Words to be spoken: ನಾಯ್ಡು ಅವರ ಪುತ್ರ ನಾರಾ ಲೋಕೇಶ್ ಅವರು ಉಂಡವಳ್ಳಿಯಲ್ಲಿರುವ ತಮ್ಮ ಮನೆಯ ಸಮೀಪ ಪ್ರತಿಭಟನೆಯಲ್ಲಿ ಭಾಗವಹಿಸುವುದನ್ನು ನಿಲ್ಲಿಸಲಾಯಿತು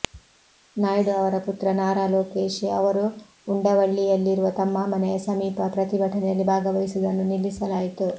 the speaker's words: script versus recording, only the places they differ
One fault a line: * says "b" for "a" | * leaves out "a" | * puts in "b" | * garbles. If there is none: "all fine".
all fine